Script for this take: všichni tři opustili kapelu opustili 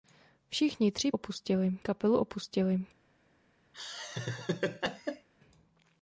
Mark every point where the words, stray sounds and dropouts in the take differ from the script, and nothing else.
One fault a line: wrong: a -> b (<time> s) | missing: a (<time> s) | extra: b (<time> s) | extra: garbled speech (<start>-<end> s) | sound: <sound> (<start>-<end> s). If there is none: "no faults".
sound: laugh (3.7-5.3 s)